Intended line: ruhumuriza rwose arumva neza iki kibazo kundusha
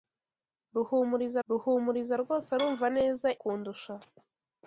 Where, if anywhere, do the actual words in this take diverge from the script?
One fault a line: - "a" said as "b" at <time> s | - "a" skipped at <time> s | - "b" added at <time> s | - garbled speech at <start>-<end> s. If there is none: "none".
- "ruhumuriza" added at 1.5 s
- "iki kibazo" skipped at 3.3 s